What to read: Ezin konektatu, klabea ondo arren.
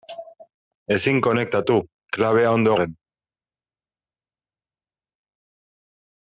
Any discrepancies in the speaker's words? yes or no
no